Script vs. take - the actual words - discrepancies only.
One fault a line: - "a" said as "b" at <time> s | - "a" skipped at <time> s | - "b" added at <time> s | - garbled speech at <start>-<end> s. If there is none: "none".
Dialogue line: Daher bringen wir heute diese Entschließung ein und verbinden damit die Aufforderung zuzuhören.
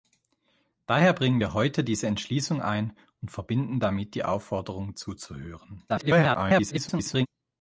- garbled speech at 5.9-7.3 s